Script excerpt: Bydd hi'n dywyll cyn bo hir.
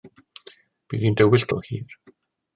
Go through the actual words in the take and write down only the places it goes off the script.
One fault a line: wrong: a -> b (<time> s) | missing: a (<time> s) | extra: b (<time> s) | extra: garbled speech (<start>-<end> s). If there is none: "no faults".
missing: cyn (1.5 s)